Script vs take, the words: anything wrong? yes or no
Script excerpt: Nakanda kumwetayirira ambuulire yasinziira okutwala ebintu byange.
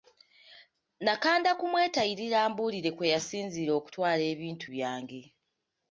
yes